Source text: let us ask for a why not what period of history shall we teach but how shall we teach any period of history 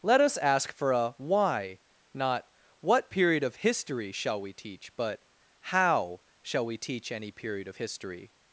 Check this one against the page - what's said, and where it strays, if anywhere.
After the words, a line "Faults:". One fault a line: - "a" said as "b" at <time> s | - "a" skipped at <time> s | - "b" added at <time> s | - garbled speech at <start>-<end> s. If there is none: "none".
let us ask for a why not what period of history shall we teach but how shall we teach any period of history
Faults:
none